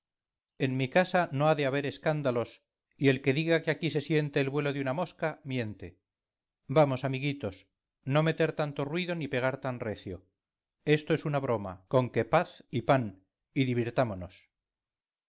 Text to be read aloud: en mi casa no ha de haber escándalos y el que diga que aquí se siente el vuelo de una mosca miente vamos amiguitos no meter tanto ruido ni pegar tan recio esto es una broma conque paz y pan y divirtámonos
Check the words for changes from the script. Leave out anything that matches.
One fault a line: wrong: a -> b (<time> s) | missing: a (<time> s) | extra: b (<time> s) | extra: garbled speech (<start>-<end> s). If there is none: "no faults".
no faults